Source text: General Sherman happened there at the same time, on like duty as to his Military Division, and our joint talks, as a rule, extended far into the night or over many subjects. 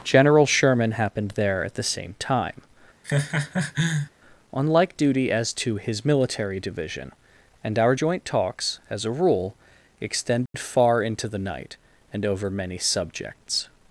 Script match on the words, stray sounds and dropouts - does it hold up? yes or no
no